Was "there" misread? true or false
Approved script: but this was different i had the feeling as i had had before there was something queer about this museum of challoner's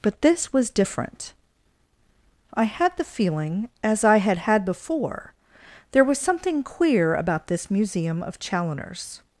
false